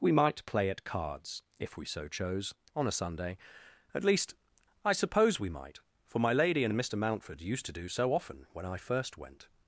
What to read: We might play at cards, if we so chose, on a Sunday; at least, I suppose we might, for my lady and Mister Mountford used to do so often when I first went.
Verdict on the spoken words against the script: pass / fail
fail